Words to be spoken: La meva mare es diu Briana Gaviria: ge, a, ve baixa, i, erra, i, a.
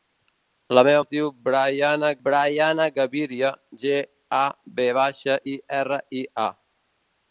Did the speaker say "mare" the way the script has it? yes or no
no